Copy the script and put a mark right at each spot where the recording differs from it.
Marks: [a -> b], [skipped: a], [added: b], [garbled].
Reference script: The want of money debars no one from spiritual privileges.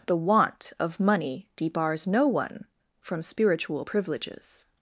The want of money debars no one from spiritual privileges.